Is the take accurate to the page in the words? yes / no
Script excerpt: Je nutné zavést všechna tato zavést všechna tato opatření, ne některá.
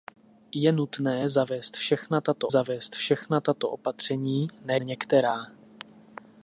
yes